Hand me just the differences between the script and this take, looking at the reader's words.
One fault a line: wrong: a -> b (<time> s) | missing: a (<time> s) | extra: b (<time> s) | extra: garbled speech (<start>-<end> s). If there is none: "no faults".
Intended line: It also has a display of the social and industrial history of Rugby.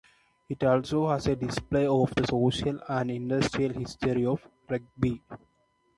no faults